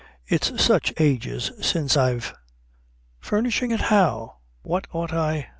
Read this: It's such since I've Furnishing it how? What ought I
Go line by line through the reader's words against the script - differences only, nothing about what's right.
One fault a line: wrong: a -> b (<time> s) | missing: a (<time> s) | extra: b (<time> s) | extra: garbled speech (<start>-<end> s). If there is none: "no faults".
extra: ages (1.0 s)